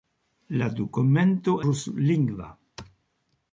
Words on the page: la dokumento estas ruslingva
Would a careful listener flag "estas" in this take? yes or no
yes